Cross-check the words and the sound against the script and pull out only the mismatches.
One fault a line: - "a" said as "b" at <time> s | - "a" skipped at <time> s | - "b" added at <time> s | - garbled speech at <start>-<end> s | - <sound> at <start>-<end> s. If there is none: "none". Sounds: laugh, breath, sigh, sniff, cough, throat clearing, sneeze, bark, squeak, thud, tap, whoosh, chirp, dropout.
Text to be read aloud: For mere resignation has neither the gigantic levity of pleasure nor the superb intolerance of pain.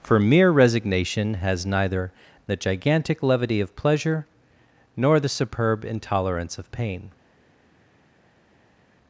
none